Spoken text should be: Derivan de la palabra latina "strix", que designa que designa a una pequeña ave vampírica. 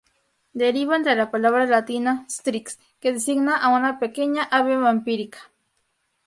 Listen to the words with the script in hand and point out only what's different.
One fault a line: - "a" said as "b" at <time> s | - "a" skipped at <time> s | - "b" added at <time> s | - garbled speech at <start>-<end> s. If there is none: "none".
- "que designa" skipped at 3.6 s